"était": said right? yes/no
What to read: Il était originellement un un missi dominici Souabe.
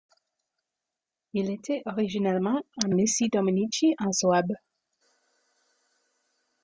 yes